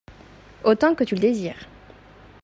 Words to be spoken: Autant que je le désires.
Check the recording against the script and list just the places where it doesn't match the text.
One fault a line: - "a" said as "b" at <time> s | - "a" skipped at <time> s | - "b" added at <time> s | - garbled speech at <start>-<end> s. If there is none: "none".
- "je" said as "tu" at 1.0 s